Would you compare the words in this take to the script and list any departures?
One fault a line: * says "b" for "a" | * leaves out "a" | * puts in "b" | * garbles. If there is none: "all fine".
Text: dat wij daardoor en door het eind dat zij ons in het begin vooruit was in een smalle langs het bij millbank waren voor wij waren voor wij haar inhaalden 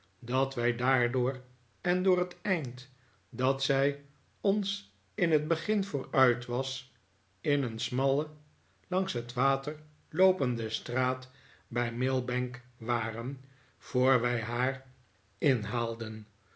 * says "water loopende straat bij millbank" for "bij millbank waren voor wij"